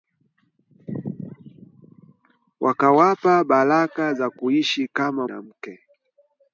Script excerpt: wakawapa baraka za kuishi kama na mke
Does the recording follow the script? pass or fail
pass